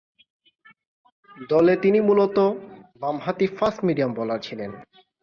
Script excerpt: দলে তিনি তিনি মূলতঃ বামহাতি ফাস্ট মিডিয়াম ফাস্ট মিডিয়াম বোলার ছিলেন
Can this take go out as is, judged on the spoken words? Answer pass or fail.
fail